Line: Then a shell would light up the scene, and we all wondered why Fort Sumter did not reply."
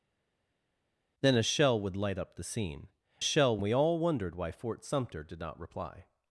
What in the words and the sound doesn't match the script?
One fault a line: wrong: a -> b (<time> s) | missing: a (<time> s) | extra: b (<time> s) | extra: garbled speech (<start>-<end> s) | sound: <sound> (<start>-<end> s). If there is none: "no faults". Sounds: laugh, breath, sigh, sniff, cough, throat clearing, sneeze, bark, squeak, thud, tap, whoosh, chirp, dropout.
wrong: and -> shell (3.2 s)